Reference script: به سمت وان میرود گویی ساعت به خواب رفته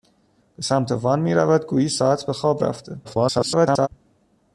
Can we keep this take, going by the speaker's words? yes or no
no